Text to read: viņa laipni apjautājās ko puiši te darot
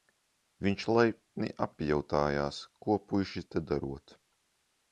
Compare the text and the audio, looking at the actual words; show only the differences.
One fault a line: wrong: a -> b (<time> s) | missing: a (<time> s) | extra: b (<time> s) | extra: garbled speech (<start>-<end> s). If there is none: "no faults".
wrong: viņa -> viņš (0.7 s)